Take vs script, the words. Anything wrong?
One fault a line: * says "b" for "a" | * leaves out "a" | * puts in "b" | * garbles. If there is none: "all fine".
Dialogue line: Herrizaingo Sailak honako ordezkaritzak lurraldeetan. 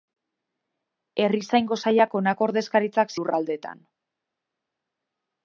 all fine